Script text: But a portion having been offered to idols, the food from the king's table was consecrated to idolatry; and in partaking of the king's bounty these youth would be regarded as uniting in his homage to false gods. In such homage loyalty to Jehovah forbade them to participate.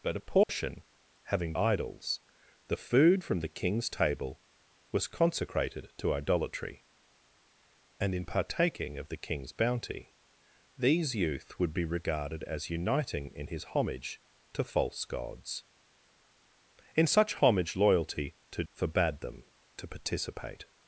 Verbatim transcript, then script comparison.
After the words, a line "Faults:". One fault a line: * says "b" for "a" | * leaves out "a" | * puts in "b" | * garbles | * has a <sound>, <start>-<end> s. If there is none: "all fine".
But a portion having idols, the food from the king's table was consecrated to idolatry; and in partaking of the king's bounty these youth would be regarded as uniting in his homage to false gods. In such homage loyalty to Forbade them to participate.
Faults:
* has a dropout, 0.4-0.5 s
* leaves out "been offered to"
* leaves out "Jehovah"